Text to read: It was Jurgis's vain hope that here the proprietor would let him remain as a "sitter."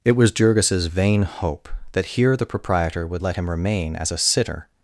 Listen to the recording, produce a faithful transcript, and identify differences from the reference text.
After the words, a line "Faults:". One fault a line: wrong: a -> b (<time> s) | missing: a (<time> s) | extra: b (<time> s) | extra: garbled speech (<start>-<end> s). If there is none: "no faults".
It was Jurgis's vain hope that here the proprietor would let him remain as a "sitter."
Faults:
no faults